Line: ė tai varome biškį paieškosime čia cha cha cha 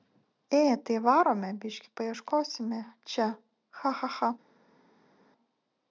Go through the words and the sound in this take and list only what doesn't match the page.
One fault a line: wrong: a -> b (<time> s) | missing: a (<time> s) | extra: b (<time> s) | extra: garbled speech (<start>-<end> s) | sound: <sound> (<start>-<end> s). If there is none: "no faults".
no faults